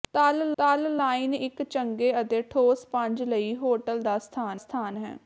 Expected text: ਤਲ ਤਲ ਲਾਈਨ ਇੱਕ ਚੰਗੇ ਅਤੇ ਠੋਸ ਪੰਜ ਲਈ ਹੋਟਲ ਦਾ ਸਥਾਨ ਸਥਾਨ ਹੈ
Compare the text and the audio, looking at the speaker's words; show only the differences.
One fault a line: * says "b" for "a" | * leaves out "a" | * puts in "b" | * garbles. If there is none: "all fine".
all fine